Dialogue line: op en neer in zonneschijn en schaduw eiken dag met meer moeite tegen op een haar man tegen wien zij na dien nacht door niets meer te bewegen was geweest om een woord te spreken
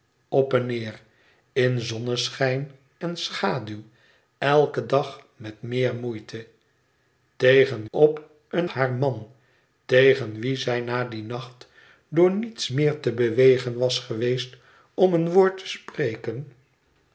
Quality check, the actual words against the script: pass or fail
pass